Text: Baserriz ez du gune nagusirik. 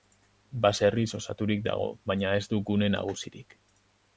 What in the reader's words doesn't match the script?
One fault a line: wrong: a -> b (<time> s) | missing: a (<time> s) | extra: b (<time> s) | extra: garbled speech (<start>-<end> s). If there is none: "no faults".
extra: osaturik dago baina (1.2 s)